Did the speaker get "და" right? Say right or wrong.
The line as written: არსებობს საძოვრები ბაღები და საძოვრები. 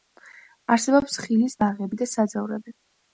right